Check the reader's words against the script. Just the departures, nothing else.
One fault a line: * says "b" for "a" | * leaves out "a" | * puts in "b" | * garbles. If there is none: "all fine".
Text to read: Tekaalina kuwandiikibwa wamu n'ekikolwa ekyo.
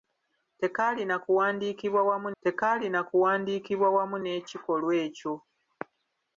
* puts in "tekaalina kuwandiikibwa wamu"